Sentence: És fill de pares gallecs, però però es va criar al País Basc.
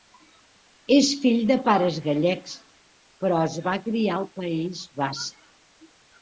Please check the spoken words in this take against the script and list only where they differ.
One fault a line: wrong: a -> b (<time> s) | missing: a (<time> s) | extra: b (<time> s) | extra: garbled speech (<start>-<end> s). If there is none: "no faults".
missing: però (3.4 s)